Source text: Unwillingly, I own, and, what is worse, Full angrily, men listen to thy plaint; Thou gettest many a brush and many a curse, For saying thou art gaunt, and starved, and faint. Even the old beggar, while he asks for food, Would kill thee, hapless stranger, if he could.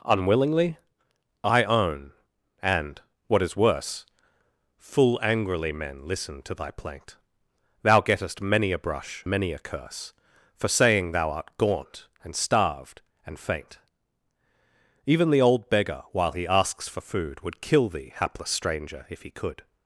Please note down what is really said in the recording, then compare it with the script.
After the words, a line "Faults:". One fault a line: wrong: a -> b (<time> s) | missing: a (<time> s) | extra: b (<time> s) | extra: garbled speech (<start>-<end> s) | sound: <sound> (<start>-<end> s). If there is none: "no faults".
Unwillingly, I own, and, what is worse, Full angrily, men listen to thy plaint; Thou gettest many a brush many a curse, For saying thou art gaunt, and starved, and faint. Even the old beggar, while he asks for food, Would kill thee, hapless stranger, if he could.
Faults:
missing: and (9.3 s)